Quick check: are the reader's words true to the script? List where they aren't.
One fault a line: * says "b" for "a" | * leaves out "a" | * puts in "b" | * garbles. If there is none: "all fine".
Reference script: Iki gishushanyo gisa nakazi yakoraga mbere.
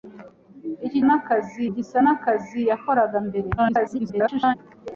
* says "nakazi" for "gishushanyo"
* garbles